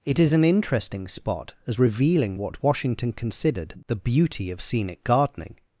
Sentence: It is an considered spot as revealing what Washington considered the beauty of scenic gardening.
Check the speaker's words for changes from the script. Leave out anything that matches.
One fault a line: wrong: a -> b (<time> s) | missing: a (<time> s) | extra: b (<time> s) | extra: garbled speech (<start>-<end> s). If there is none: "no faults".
wrong: considered -> interesting (0.4 s)